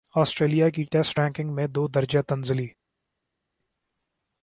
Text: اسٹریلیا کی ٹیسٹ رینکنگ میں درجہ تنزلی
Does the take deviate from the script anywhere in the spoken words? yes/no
yes